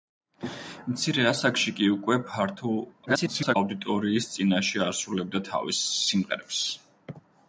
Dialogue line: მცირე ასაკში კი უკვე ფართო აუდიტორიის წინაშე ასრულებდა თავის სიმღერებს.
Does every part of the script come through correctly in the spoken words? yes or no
no